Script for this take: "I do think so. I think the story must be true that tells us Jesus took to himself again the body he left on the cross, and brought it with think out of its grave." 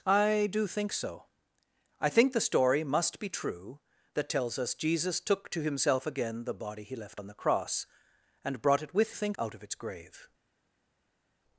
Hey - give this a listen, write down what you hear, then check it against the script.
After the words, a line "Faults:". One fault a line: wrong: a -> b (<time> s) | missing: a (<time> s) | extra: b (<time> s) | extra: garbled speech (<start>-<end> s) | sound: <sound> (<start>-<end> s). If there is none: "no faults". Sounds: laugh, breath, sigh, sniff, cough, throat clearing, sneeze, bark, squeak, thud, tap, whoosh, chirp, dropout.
"I do think so. I think the story must be true that tells us Jesus took to himself again the body he left on the cross, and brought it with think out of its grave."
Faults:
no faults